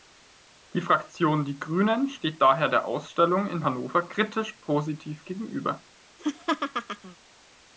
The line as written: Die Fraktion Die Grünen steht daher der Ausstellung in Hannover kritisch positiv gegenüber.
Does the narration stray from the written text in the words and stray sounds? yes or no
yes